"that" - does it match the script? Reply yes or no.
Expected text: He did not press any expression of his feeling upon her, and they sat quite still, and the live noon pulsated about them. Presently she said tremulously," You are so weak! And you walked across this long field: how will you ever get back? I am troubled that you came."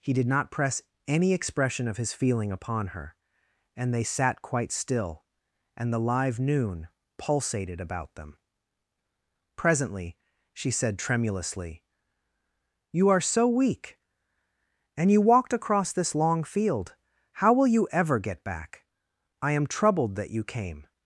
yes